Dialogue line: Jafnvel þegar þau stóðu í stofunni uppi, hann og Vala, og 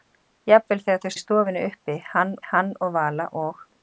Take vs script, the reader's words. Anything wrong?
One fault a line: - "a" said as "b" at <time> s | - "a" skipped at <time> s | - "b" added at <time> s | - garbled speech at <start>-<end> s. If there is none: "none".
- "stóðu" skipped at 1.1 s
- "hann" added at 2.5 s